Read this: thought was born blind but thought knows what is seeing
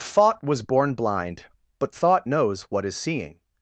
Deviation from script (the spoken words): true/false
false